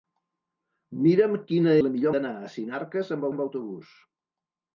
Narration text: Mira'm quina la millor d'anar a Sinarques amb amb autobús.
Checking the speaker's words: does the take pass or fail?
pass